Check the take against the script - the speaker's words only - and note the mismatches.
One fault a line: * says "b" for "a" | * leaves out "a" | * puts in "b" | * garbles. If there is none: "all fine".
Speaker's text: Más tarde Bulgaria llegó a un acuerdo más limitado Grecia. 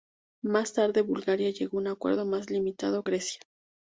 all fine